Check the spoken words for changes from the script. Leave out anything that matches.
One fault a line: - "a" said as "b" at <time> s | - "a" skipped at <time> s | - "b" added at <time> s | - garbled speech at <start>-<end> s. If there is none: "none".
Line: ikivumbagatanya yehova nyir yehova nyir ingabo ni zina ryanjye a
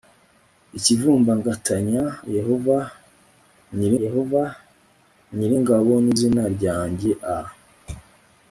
none